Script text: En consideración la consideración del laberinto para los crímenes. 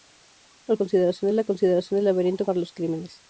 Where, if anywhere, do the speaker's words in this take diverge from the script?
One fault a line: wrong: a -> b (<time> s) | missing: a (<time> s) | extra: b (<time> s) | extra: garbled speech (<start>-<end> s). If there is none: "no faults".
no faults